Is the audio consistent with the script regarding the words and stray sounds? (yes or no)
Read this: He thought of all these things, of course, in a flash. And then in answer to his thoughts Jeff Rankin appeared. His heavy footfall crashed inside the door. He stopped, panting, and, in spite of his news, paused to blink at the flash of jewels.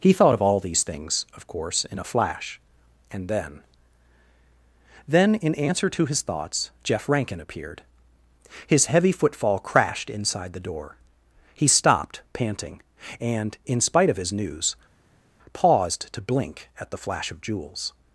no